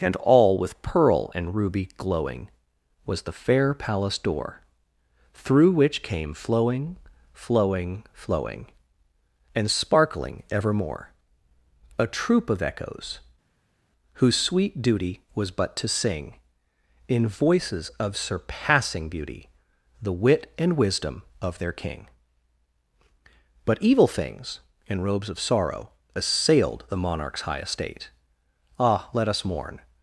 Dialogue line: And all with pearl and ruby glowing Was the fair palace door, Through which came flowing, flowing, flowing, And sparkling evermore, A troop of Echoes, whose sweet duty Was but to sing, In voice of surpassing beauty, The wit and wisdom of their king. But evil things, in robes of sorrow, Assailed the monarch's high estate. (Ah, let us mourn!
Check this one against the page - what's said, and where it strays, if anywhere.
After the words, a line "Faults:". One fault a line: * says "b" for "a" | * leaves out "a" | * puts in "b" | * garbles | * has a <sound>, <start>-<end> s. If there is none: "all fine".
And all with pearl and ruby glowing Was the fair palace door, Through which came flowing, flowing, flowing, And sparkling evermore, A troop of Echoes, whose sweet duty Was but to sing, In voices of surpassing beauty, The wit and wisdom of their king. But evil things, in robes of sorrow, Assailed the monarch's high estate. (Ah, let us mourn!
Faults:
* says "voices" for "voice"